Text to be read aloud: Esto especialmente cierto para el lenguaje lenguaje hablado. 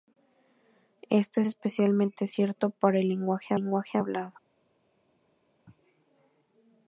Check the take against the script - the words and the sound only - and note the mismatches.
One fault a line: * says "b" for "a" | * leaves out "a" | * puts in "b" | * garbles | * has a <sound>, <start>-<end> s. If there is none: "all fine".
all fine